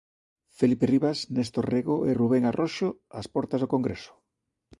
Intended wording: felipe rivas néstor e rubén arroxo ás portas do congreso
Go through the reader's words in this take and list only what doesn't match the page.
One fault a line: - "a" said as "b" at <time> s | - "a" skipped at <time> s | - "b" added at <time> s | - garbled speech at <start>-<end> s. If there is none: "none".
- "rego" added at 1.7 s